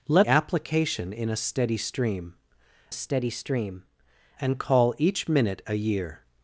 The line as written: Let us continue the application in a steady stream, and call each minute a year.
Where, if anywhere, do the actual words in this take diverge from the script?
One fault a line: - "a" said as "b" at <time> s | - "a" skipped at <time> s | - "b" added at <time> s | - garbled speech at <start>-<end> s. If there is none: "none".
- "us continue the" skipped at 0.3 s
- "steady stream" added at 2.9 s